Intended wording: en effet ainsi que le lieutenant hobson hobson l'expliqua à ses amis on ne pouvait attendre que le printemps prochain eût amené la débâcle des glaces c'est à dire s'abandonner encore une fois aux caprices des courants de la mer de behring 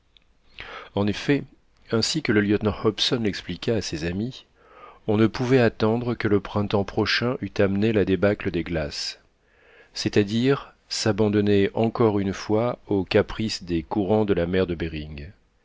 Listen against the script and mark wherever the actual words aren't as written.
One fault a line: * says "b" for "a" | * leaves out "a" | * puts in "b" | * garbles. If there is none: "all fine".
* leaves out "hobson"